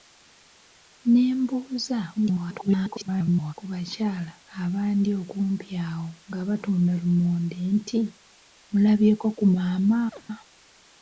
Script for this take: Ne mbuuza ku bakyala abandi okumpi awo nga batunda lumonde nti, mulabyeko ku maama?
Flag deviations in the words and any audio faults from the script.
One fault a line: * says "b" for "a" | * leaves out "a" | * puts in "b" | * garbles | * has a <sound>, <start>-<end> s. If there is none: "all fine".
* garbles
* has a chirp, 10.1-10.2 s